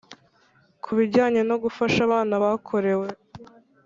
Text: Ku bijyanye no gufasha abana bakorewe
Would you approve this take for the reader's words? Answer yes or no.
yes